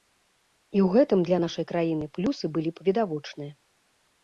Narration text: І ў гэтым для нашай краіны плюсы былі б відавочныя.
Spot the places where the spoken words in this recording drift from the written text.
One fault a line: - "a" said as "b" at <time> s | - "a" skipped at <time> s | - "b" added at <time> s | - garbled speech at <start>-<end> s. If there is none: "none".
none